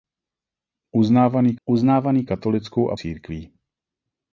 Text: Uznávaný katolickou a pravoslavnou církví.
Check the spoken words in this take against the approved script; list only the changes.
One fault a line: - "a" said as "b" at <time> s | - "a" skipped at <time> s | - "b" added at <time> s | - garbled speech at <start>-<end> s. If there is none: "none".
- "uznávaný" added at 1.7 s
- "pravoslavnou" skipped at 3.0 s